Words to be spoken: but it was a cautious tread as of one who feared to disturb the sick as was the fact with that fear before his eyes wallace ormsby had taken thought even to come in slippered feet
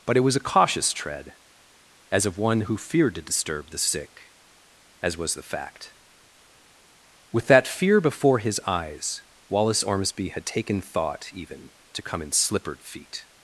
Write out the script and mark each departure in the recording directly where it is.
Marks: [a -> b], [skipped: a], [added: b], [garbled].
but it was a cautious tread as of one who feared to disturb the sick as was the fact with that fear before his eyes wallace ormsby had taken thought even to come in slippered feet